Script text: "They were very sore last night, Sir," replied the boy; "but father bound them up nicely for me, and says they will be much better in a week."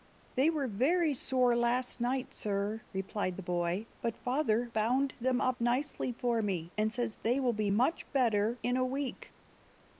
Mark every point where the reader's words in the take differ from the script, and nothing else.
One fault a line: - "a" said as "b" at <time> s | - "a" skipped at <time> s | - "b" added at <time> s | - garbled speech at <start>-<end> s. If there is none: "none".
none